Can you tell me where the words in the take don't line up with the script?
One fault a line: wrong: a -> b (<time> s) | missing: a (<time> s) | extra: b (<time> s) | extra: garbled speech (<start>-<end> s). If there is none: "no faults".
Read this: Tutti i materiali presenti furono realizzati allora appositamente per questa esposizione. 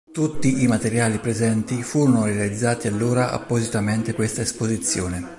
missing: per (4.1 s)